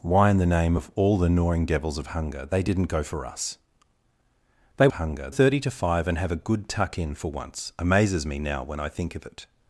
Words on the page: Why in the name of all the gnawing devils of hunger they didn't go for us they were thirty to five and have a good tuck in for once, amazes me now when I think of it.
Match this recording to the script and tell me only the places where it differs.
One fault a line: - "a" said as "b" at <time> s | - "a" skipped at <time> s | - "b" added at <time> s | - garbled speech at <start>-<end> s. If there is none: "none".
- "were" said as "hunger" at 4.9 s